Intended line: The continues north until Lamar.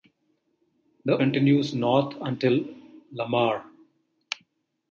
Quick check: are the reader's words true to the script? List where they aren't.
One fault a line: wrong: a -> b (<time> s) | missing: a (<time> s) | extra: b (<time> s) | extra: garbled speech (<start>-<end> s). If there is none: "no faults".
no faults